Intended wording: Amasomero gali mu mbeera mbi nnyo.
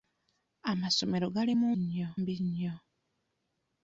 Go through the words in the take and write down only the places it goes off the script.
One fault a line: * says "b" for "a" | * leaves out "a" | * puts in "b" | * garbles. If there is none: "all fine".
* says "nnyo" for "mbeera"